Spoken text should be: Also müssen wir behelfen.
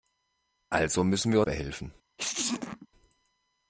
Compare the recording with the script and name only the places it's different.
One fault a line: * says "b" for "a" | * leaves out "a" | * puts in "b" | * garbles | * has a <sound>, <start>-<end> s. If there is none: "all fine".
* has a sneeze, 2.2-2.9 s